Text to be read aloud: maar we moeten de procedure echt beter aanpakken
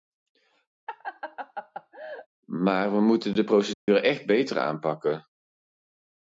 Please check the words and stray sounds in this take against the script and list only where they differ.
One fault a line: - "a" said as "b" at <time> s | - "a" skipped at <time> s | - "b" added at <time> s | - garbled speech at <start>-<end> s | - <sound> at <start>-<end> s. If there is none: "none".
- laugh at 0.9-2.3 s
- dropout at 3.7-3.9 s